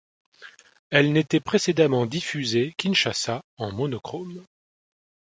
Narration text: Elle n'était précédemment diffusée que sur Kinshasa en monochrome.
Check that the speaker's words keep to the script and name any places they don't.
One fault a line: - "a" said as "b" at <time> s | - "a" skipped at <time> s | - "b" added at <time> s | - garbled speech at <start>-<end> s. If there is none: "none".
- "que sur" skipped at 2.8 s